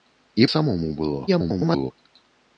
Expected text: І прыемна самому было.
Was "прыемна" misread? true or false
true